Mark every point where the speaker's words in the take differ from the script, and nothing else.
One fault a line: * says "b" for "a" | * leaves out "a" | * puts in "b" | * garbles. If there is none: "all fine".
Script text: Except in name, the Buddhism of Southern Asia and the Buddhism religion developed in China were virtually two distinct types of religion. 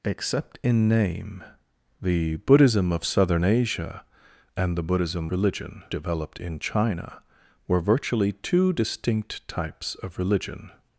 all fine